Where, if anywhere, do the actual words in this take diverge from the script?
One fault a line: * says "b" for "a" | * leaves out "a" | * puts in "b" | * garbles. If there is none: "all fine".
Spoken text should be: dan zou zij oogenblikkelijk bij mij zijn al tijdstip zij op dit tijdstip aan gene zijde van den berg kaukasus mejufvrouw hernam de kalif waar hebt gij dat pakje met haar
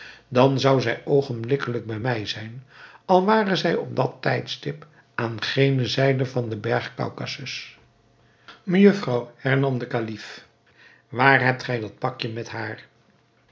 * says "ware" for "tijdstip"
* says "dat" for "dit"